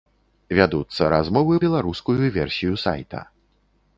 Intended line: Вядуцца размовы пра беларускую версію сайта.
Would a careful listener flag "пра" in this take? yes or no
yes